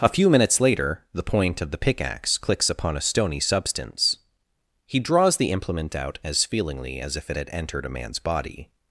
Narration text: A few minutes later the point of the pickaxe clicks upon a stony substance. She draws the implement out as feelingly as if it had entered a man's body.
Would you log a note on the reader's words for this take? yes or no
yes